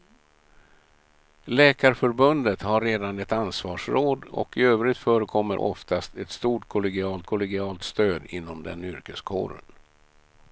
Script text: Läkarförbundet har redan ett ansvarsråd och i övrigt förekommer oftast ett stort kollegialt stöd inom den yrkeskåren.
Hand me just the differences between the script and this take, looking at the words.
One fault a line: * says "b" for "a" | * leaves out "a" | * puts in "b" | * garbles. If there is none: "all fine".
* puts in "kollegialt"